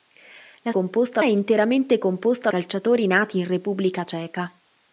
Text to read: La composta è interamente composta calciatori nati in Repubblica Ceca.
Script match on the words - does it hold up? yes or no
yes